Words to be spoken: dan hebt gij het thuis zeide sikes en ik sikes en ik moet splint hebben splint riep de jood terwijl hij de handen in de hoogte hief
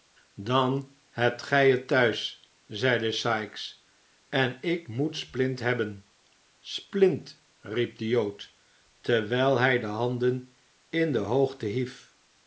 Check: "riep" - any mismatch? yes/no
no